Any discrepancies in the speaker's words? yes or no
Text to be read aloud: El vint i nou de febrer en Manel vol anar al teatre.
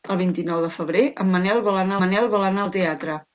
yes